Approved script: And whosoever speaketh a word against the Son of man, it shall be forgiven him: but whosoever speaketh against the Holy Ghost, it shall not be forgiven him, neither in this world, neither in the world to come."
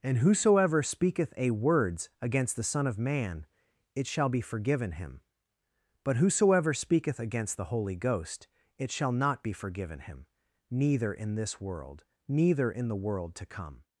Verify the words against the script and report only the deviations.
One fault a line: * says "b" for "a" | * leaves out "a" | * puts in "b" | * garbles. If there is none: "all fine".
* says "words" for "word"